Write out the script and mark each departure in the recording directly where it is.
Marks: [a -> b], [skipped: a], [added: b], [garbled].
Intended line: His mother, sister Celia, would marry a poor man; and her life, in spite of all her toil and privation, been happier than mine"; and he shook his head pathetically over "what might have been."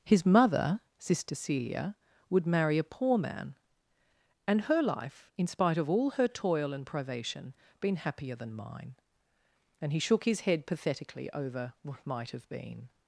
His mother, sister Celia, would marry a poor man; and her life, in spite of all her toil and privation, been happier than mine"; and he shook his head pathetically over "what might have been."